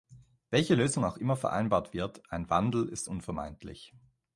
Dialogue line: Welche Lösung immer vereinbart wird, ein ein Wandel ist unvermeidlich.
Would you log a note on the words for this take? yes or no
yes